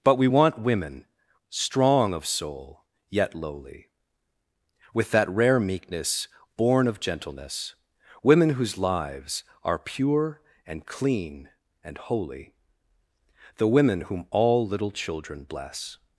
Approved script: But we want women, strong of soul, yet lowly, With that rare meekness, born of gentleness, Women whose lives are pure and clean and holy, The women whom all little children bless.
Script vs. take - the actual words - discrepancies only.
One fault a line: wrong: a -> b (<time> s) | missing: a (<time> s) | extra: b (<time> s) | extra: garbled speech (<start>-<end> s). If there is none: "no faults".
no faults